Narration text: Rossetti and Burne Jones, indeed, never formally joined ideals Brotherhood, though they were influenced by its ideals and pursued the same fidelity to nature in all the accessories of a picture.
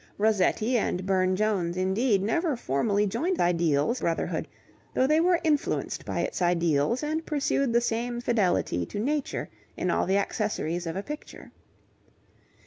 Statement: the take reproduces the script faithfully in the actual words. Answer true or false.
true